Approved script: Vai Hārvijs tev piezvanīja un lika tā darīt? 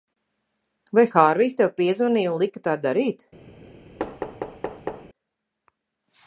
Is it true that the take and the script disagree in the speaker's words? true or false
false